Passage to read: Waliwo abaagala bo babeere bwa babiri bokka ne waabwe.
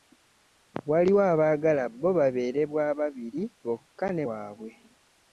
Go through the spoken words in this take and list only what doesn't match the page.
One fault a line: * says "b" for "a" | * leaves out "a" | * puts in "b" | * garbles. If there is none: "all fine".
all fine